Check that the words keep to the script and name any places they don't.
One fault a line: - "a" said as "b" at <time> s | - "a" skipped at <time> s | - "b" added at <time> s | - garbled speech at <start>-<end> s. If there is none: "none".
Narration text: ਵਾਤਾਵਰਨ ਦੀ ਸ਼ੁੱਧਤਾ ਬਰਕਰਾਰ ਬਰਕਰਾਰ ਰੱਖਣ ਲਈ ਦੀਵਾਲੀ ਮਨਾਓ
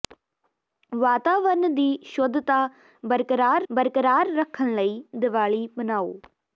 none